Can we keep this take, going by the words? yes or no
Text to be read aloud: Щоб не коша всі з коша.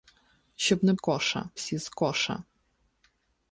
yes